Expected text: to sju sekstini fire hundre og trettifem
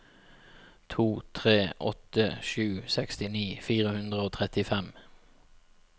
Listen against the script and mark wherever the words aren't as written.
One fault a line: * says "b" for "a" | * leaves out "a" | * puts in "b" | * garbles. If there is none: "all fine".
* puts in "tre åtte"